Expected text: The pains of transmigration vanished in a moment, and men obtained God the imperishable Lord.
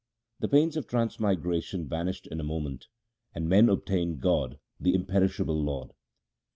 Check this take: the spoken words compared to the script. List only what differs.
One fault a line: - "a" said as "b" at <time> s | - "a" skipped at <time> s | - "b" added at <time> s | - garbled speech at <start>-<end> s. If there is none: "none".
none